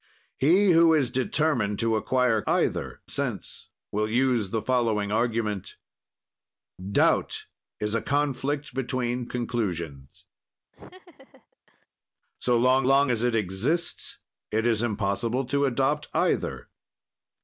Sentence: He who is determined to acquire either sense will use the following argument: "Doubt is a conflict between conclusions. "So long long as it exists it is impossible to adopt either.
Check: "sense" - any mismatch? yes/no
no